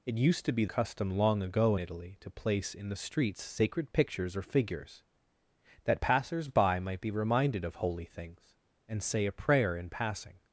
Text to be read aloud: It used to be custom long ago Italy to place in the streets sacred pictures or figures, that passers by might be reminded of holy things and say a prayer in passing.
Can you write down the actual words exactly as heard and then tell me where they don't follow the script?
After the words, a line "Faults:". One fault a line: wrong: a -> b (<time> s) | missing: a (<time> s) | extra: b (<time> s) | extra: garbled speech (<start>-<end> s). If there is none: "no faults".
It used to be custom long ago Italy to place in the streets sacred pictures or figures, that passers by might be reminded of holy things and say a prayer in passing.
Faults:
no faults